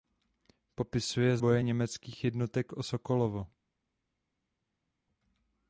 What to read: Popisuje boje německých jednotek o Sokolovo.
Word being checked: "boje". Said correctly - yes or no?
yes